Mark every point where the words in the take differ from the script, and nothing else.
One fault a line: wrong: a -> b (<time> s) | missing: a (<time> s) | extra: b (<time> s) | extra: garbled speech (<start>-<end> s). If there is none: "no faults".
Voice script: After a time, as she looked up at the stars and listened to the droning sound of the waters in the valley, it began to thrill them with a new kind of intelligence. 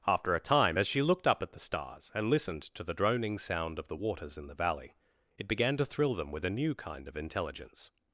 no faults